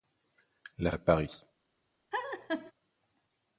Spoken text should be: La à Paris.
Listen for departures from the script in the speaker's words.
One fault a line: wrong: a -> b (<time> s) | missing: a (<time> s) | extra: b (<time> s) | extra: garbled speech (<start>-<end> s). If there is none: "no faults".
no faults